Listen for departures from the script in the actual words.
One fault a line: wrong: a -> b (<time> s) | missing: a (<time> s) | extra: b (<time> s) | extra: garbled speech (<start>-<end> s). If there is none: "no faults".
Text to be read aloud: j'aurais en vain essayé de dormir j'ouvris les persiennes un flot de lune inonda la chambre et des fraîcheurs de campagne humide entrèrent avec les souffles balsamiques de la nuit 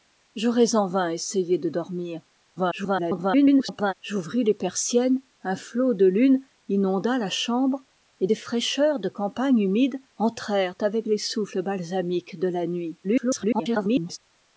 extra: garbled speech (2.6-3.9 s)
extra: garbled speech (13.0-14.2 s)